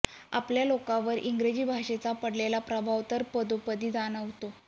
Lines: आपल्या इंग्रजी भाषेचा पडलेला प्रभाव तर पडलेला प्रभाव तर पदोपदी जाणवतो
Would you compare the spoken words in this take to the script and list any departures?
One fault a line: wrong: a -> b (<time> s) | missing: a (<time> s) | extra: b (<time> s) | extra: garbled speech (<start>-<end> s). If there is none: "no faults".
extra: लोकांवर (0.7 s)
missing: पडलेला प्रभाव तर (3.2 s)